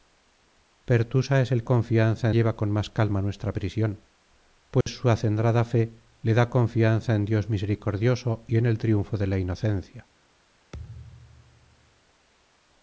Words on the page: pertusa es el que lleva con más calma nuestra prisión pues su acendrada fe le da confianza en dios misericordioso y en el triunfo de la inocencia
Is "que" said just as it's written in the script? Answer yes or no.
no